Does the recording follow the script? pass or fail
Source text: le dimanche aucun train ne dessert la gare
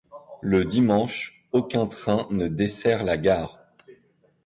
pass